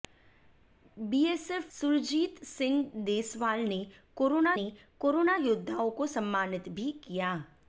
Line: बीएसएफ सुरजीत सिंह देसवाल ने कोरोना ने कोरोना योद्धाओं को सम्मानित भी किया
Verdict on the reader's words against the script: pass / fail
pass